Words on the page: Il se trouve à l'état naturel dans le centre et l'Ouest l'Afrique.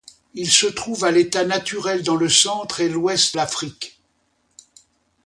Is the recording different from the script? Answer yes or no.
no